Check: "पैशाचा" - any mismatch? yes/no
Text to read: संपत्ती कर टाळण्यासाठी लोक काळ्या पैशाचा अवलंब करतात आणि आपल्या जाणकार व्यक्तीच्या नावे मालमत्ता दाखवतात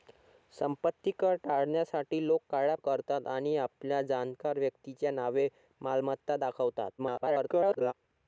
yes